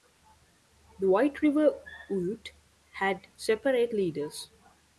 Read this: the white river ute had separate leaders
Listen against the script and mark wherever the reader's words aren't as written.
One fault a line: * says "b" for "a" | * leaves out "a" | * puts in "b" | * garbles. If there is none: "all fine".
all fine